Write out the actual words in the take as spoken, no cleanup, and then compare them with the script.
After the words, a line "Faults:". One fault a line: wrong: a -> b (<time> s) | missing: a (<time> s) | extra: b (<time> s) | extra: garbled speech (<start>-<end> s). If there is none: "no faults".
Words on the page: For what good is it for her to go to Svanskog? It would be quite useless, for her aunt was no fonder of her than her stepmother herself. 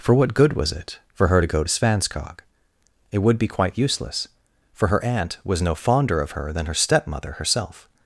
For what good was it for her to go to Svanskog? It would be quite useless, for her aunt was no fonder of her than her stepmother herself.
Faults:
wrong: is -> was (0.5 s)